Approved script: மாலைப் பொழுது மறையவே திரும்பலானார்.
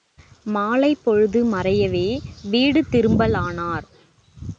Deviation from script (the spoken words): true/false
true